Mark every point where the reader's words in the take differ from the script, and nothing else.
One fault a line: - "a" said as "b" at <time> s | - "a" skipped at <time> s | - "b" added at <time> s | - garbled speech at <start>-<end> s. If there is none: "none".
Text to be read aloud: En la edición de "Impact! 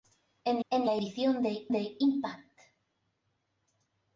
- "en" added at 0.7 s
- "de" added at 1.7 s